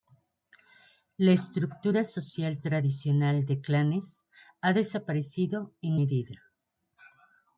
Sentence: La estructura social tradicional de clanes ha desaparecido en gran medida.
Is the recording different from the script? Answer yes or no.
yes